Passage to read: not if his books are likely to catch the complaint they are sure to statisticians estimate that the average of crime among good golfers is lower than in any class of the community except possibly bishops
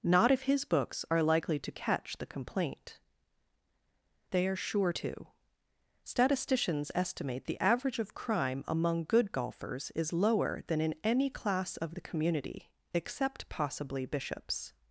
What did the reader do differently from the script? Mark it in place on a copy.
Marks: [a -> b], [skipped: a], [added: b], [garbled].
not if his books are likely to catch the complaint they are sure to statisticians estimate [skipped: that] the average of crime among good golfers is lower than in any class of the community except possibly bishops